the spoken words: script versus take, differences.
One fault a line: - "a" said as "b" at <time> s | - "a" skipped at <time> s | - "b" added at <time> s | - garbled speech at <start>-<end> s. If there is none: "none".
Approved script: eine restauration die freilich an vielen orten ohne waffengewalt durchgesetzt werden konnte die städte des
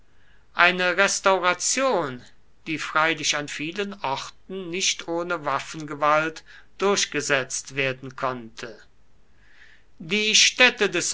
- "nicht" added at 4.7 s